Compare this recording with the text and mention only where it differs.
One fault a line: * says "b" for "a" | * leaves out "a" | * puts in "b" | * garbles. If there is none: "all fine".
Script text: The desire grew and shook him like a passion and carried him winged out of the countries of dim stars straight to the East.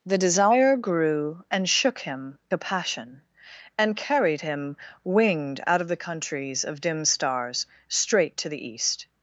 * leaves out "like"